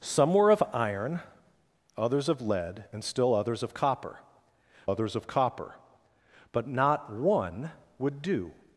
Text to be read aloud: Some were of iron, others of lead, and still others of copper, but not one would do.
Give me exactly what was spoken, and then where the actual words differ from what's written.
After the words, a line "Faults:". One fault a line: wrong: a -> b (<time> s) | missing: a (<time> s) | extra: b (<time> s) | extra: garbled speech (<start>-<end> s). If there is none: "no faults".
Some were of iron, others of lead, and still others of copper others of copper, but not one would do.
Faults:
extra: others of copper (4.9 s)